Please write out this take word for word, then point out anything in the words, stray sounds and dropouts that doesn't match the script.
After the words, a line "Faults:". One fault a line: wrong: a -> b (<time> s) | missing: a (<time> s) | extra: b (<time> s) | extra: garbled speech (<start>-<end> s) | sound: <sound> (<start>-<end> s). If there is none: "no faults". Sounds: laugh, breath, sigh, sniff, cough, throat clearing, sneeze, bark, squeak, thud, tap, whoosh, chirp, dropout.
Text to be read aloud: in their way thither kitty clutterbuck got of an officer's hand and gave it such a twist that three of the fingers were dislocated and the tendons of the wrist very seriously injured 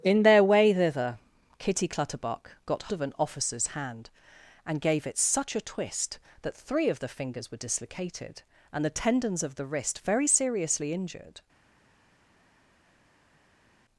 in their way thither kitty clutterbuck got of an officer's hand and gave it such a twist that three of the fingers were dislocated and the tendons of the wrist very seriously injured
Faults:
no faults